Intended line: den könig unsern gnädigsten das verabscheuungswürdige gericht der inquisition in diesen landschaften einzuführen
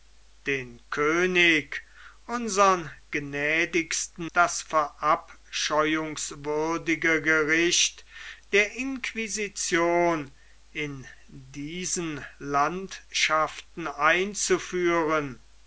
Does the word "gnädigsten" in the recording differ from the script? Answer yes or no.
no